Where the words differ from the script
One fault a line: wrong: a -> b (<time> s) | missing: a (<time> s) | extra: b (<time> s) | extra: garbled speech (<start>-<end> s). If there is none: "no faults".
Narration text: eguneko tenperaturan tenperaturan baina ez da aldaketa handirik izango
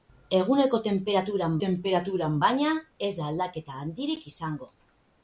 no faults